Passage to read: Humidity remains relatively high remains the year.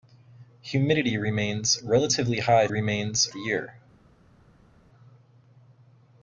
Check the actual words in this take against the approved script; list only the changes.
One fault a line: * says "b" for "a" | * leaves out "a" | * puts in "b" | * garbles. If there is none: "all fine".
all fine